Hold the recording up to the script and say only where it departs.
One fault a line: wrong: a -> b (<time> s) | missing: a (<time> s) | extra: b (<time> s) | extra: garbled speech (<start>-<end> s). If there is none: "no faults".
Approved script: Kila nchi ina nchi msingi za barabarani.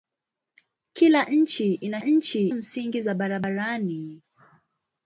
no faults